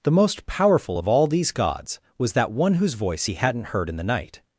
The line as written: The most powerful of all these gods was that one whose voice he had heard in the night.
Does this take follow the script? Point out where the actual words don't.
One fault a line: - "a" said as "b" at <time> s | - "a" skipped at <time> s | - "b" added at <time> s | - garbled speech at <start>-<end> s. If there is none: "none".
- "had" said as "hadn't" at 3.3 s